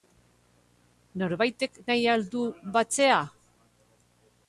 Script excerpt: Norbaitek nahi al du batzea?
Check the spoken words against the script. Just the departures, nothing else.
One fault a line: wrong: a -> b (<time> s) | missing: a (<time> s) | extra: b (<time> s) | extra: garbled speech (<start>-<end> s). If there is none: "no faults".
no faults